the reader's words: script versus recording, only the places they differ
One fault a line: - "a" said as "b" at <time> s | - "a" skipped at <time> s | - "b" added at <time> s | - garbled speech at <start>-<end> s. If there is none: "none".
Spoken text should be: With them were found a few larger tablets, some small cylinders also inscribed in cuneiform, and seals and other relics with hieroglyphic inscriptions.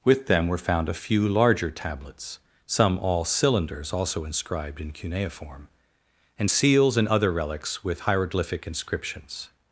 - "small" said as "all" at 3.0 s